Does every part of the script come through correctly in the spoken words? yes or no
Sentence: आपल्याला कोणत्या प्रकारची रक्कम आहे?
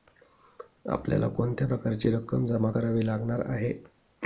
no